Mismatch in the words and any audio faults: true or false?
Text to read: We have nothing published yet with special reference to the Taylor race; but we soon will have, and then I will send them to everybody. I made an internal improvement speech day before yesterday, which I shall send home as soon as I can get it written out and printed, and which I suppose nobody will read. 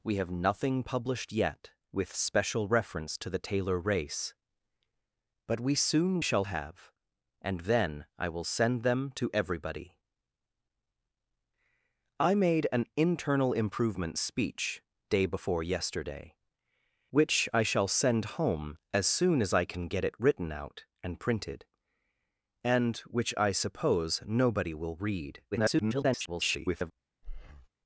true